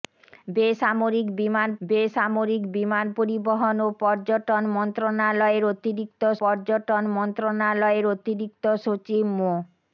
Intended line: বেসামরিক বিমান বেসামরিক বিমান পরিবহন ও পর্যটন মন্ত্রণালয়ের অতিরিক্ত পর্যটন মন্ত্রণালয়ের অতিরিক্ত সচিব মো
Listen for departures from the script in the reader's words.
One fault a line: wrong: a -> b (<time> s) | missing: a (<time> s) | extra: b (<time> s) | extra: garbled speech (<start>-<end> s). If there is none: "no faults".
no faults